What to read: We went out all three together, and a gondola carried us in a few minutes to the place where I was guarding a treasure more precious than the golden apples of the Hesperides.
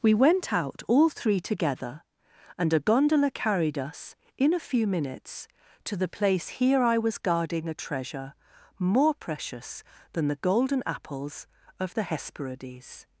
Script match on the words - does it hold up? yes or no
no